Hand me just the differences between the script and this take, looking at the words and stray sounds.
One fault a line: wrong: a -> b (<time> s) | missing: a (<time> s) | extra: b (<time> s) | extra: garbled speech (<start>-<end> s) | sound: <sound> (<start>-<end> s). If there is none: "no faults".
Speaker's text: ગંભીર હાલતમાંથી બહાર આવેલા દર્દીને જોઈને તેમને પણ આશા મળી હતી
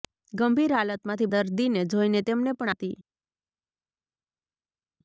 missing: બહાર આવેલા (1.3 s)
missing: આશા મળી (2.7 s)